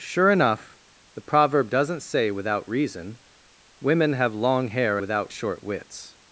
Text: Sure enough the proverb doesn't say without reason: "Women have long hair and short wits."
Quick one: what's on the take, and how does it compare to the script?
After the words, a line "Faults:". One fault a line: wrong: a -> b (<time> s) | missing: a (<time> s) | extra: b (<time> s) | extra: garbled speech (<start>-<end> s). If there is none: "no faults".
Sure enough the proverb doesn't say without reason: "Women have long hair without short wits."
Faults:
wrong: and -> without (4.9 s)